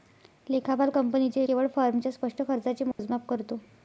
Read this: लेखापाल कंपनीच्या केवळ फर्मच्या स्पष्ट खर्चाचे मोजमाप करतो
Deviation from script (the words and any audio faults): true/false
true